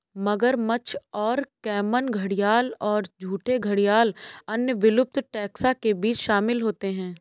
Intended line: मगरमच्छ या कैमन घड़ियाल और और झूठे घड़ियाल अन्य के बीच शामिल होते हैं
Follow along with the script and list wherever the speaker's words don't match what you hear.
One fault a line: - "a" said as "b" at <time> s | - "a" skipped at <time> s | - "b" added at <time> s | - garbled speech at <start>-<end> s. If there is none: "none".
- "या" said as "और" at 1.1 s
- "और" skipped at 3.1 s
- "विलुप्त टैक्सा" added at 4.8 s